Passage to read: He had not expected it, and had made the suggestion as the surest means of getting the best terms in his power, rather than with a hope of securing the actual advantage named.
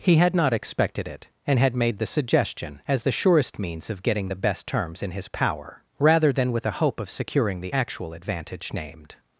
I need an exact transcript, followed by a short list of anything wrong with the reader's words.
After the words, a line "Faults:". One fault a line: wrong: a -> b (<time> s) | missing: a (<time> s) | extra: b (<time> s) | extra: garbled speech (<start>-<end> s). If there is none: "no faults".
He had not expected it, and had made the suggestion as the surest means of getting the best terms in his power, rather than with a hope of securing the actual advantage named.
Faults:
no faults